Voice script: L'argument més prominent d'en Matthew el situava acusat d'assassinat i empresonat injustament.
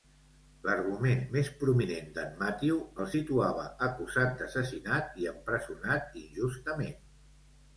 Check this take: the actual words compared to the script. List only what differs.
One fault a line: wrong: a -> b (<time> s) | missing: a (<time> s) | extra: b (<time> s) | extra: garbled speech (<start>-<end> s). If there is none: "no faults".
no faults